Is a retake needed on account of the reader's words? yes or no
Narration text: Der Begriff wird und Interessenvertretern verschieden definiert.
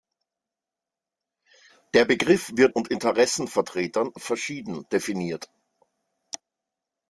no